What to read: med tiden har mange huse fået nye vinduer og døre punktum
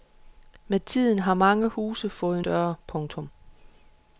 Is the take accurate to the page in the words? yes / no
no